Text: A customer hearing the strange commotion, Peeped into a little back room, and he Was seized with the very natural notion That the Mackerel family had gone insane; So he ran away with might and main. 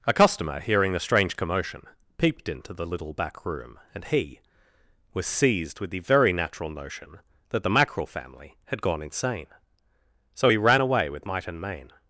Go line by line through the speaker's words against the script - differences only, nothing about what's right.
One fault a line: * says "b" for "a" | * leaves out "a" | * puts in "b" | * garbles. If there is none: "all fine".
* says "the" for "a"